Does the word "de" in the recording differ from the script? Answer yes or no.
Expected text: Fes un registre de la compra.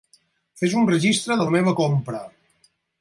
no